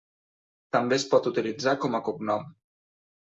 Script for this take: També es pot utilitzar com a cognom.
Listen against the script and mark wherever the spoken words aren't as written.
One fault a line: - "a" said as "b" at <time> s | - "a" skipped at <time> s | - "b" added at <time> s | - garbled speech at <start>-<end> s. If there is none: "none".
none